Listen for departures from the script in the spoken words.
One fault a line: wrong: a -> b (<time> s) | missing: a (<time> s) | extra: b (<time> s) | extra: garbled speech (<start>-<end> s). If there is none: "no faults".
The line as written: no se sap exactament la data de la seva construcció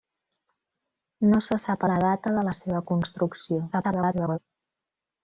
missing: exactament (1.9 s)
extra: garbled speech (3.7-4.4 s)